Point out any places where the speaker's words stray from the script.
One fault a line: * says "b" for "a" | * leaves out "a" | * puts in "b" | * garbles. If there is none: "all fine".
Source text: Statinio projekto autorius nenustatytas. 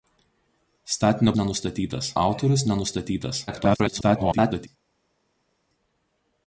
* says "nenustatytas" for "projekto"
* garbles